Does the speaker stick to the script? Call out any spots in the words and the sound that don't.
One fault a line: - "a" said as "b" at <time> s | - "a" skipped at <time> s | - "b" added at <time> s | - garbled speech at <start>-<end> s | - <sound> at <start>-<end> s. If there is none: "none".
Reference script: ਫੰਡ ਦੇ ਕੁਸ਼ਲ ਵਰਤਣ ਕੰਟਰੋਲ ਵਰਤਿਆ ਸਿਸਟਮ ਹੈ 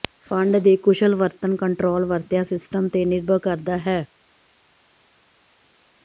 - "ਤੇ ਨਿਰਭਰ ਕਰਦਾ" added at 2.9 s